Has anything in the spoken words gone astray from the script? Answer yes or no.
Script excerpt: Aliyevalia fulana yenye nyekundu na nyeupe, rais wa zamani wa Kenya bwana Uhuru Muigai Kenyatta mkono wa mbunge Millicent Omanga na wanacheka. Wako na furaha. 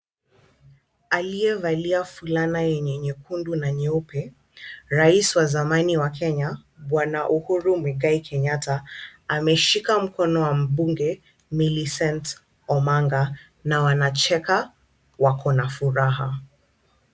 yes